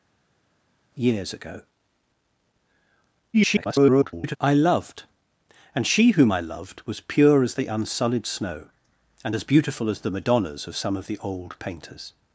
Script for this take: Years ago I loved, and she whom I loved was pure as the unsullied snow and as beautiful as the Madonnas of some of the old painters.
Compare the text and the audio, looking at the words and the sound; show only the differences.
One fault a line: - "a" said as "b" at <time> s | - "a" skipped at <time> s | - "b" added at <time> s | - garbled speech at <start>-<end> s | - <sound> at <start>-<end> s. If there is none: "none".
- garbled speech at 3.3-4.4 s